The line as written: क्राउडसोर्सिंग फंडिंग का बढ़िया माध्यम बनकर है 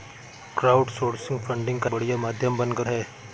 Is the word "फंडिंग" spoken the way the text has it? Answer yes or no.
yes